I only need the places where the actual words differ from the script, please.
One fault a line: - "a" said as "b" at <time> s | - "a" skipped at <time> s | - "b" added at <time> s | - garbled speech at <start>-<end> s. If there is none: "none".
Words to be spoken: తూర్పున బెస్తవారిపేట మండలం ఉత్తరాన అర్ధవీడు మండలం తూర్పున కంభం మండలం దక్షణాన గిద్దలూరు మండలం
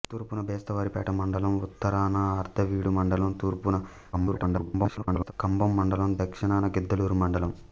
- garbled speech at 4.1-5.3 s